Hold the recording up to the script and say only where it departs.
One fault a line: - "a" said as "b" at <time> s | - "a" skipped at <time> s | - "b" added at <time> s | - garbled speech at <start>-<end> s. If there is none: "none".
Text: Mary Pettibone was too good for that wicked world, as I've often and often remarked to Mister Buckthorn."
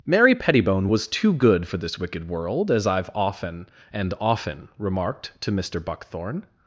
- "that" said as "this" at 1.8 s